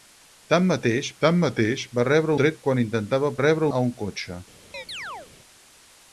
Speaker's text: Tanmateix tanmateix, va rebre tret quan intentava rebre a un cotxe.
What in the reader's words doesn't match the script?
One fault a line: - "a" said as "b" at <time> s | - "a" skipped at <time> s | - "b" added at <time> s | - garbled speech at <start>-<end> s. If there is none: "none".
none